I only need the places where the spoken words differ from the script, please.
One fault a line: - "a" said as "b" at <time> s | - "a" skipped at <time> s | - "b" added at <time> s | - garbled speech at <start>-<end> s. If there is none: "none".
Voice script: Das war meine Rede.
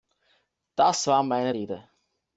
none